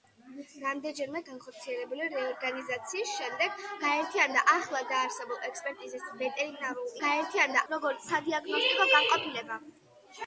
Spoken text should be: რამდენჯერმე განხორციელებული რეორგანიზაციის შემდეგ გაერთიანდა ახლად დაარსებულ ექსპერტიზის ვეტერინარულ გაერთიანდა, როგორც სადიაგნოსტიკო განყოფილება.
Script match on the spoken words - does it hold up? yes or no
yes